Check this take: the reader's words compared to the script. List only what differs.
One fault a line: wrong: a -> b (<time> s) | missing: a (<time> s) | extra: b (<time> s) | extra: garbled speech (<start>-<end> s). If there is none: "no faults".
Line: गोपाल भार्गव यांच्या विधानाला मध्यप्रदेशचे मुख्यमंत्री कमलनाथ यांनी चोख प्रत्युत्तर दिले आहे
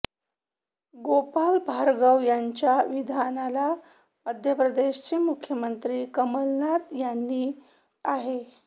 missing: चोख प्रत्युत्तर दिले (7.5 s)